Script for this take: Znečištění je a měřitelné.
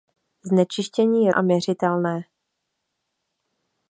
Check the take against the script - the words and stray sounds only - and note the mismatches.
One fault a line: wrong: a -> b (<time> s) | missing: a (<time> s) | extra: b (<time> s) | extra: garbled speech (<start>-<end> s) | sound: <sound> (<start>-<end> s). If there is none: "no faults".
no faults